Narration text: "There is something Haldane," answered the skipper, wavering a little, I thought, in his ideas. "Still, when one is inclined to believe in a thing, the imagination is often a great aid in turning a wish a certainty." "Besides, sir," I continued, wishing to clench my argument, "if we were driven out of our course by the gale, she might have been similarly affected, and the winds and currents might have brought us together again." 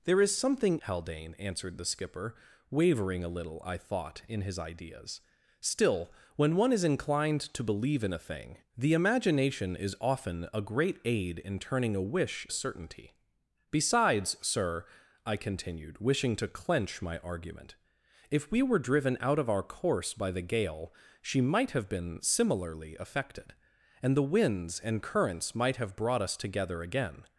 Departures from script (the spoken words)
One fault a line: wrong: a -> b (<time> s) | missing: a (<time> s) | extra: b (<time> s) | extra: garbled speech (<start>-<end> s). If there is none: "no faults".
no faults